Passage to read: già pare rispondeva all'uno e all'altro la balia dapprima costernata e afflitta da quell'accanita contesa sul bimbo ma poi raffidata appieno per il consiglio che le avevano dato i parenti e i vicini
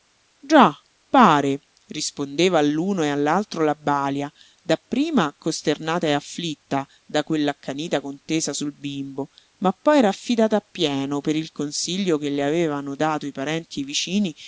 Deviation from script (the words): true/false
false